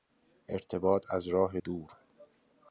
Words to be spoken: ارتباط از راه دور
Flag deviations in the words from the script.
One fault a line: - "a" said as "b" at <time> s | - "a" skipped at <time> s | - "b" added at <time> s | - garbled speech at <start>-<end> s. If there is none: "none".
none